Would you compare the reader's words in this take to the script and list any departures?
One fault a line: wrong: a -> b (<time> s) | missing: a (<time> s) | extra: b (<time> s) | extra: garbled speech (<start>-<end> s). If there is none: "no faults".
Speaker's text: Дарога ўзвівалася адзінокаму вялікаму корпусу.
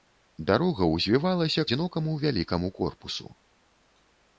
no faults